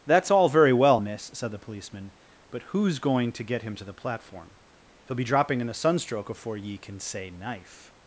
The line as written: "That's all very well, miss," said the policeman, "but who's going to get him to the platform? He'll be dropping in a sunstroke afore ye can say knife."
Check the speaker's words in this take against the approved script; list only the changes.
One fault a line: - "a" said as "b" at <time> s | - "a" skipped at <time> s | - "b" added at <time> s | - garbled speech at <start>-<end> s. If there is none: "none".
none